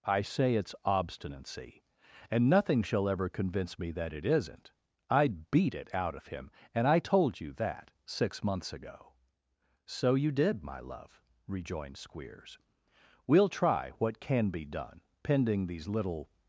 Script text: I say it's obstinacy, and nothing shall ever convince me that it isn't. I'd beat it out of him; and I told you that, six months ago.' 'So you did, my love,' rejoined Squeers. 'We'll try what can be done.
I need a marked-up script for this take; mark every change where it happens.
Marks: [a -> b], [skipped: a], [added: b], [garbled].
I say it's obstinacy, and nothing shall ever convince me that it isn't. I'd beat it out of him; and I told you that, six months ago.' 'So you did, my love,' rejoined Squeers. 'We'll try what can be done. [added: Pending these little]